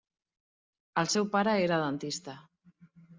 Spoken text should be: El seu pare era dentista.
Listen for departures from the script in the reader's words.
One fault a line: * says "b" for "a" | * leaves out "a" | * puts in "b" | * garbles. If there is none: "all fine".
all fine